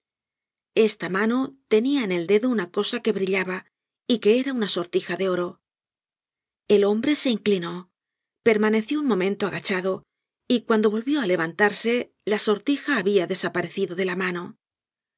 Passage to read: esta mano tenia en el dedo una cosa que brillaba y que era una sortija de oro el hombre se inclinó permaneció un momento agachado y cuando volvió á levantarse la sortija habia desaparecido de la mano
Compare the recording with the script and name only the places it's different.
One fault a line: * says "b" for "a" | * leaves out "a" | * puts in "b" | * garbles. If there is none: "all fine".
all fine